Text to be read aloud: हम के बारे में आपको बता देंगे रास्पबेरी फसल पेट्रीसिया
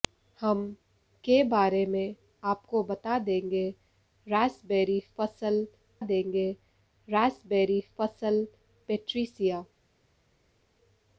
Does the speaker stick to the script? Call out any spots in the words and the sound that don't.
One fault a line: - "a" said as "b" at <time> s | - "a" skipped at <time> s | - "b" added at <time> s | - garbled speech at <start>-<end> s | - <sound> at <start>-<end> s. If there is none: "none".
- "देंगे रास्पबेरी फसल" added at 6.0 s